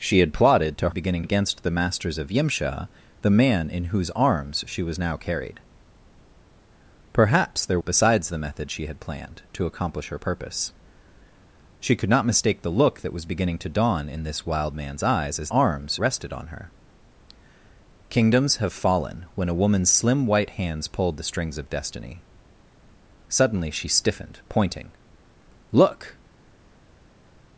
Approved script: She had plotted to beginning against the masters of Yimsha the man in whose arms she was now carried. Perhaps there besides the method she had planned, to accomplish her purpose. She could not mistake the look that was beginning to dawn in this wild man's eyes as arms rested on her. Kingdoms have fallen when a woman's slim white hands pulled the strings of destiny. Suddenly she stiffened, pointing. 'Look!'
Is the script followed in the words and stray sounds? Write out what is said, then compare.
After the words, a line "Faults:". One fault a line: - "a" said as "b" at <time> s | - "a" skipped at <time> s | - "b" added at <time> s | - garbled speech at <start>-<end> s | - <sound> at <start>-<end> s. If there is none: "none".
She had plotted to beginning against the masters of Yimsha the man in whose arms she was now carried. Perhaps there besides the method she had planned, to accomplish her purpose. She could not mistake the look that was beginning to dawn in this wild man's eyes as arms rested on her. Kingdoms have fallen when a woman's slim white hands pulled the strings of destiny. Suddenly she stiffened, pointing. 'Look!'
Faults:
none